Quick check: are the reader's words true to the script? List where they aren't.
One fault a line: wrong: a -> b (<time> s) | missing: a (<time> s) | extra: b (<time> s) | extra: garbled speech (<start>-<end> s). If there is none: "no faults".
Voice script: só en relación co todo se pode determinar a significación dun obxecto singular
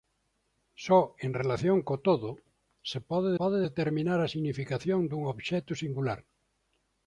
extra: pode (3.4 s)